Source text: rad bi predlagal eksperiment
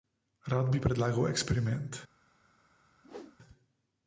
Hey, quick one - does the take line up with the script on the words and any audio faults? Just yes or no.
no